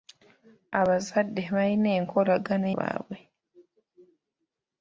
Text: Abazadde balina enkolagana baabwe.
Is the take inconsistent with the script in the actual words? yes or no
no